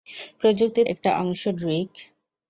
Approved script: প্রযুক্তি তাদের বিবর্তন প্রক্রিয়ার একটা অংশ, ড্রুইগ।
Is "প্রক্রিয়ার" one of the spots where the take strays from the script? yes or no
yes